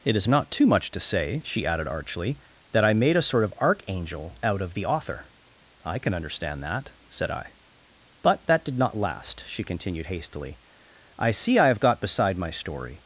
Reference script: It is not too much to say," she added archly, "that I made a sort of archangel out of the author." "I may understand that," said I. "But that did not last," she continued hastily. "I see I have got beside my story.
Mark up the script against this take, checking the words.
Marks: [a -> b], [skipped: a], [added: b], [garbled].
It is not too much to say," she added archly, "that I made a sort of archangel out of the author." "I [may -> can] understand that," said I. "But that did not last," she continued hastily. "I see I have got beside my story.